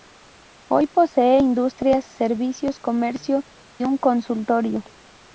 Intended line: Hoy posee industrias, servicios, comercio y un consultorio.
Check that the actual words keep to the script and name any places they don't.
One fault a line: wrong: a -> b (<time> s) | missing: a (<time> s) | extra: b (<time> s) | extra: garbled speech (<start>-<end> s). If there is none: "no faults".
missing: y (3.4 s)